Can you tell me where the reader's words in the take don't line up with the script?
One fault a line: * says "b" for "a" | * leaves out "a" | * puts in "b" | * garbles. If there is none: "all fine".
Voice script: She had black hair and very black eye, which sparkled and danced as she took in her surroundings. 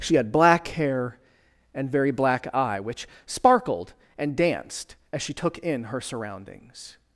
all fine